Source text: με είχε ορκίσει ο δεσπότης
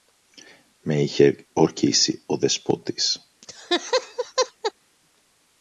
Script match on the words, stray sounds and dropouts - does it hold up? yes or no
no